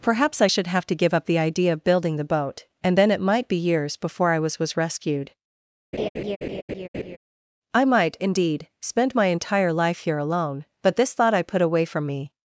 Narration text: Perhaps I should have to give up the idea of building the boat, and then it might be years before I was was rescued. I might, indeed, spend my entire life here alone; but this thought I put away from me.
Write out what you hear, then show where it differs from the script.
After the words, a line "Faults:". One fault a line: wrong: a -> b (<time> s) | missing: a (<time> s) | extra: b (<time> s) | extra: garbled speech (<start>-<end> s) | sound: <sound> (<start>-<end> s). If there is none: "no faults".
Perhaps I should have to give up the idea of building the boat, and then it might be years before I was was rescued. I might, indeed, spend my entire life here alone; but this thought I put away from me.
Faults:
sound: laugh (5.9-7.2 s)